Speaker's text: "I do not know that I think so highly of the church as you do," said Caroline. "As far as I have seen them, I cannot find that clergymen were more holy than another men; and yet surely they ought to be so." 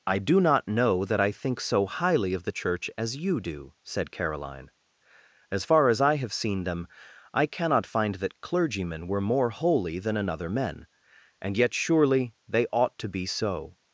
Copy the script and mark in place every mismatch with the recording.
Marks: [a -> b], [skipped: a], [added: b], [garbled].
"I do not know that I think so highly of the church as you do," said Caroline. "As far as I have seen them, I cannot find that clergymen were more holy than another men; and yet surely they ought to be so."